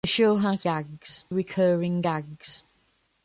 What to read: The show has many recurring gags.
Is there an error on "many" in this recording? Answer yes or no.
yes